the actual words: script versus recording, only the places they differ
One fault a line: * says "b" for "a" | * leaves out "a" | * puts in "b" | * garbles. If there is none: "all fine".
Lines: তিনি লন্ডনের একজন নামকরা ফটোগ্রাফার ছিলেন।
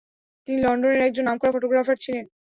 all fine